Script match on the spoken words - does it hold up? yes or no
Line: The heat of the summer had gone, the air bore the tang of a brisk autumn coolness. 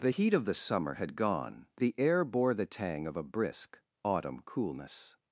yes